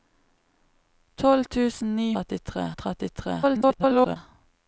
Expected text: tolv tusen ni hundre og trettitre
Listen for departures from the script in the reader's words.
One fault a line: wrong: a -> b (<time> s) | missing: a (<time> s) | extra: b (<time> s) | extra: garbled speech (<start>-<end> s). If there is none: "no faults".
wrong: hundre -> trettitre (2.1 s)
extra: garbled speech (3.4-4.2 s)